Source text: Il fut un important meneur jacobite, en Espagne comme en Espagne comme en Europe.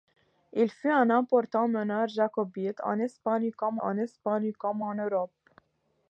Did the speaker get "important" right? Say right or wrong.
right